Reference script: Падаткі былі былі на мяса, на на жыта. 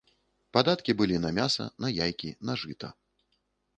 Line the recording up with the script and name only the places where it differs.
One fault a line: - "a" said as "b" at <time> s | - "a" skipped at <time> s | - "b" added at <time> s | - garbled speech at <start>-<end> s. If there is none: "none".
- "былі" skipped at 1.2 s
- "яйкі" added at 2.1 s